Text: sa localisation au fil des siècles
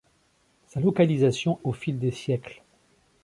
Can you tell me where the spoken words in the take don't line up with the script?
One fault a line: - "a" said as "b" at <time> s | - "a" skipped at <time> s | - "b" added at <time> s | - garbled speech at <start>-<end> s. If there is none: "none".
none